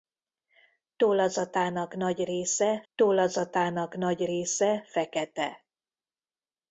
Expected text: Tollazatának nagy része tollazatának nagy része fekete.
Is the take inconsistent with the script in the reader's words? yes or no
no